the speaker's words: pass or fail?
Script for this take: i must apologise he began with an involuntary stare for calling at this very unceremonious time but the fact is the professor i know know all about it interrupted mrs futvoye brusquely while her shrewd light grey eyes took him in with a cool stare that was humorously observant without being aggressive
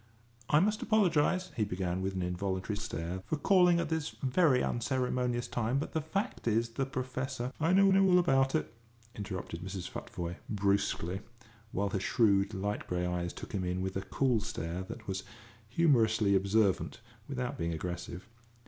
pass